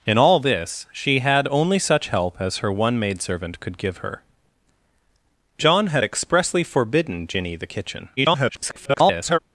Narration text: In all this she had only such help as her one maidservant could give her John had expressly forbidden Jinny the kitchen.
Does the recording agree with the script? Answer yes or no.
no